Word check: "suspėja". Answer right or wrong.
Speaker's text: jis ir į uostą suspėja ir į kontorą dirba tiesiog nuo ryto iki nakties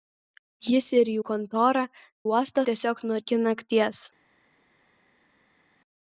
wrong